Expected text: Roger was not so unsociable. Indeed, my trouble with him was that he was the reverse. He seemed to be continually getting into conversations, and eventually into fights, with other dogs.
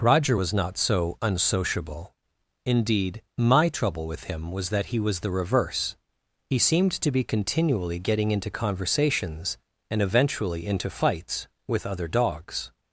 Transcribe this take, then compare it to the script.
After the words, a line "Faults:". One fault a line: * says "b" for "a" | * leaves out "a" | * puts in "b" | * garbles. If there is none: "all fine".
Roger was not so unsociable. Indeed, my trouble with him was that he was the reverse. He seemed to be continually getting into conversations, and eventually into fights, with other dogs.
Faults:
all fine